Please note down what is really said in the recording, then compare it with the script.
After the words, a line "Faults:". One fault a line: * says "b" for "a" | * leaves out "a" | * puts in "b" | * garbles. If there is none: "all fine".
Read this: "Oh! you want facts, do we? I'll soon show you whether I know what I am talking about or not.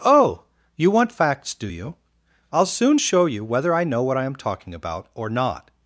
"Oh! you want facts, do you? I'll soon show you whether I know what I am talking about or not.
Faults:
* says "you" for "we"